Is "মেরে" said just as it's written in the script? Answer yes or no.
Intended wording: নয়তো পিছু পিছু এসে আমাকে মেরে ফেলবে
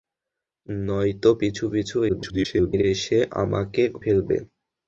no